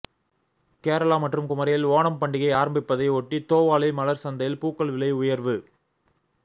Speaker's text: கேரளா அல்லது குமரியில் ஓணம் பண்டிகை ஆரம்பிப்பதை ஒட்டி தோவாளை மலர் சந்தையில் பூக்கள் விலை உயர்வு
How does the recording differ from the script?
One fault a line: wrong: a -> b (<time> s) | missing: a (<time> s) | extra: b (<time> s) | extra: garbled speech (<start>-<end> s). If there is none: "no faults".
wrong: அல்லது -> மற்றும் (1.2 s)